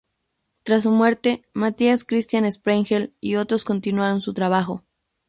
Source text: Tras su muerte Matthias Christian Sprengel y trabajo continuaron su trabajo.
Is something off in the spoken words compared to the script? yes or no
yes